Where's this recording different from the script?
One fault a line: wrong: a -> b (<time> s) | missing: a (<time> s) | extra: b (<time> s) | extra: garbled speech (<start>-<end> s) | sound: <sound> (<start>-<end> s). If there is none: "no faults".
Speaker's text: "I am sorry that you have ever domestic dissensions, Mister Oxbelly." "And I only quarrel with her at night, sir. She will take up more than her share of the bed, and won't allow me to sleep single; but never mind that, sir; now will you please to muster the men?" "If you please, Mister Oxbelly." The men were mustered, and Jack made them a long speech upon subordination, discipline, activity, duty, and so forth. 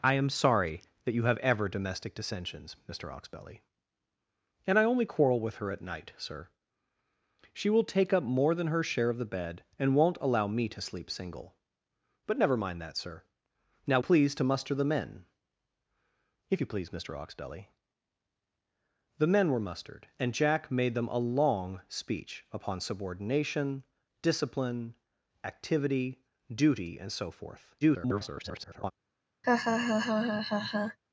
missing: will you (14.0 s)
extra: garbled speech (27.8-28.9 s)
sound: laugh (29.4-31.0 s)